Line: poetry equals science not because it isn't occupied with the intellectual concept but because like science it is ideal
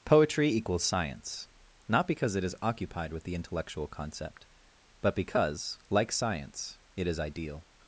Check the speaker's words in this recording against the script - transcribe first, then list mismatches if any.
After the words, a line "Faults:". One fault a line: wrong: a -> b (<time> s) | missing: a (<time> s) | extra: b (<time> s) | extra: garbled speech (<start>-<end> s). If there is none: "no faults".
poetry equals science not because it is occupied with the intellectual concept but because like science it is ideal
Faults:
wrong: isn't -> is (2.4 s)